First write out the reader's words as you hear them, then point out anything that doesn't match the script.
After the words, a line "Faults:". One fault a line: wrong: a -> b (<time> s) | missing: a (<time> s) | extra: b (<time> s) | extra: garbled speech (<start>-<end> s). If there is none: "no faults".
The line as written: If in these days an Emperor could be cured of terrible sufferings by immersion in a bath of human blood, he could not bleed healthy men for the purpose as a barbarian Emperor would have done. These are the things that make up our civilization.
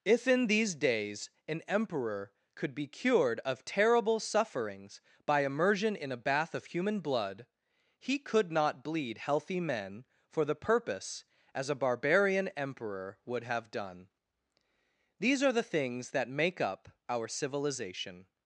If in these days an Emperor could be cured of terrible sufferings by immersion in a bath of human blood, he could not bleed healthy men for the purpose as a barbarian Emperor would have done. These are the things that make up our civilization.
Faults:
no faults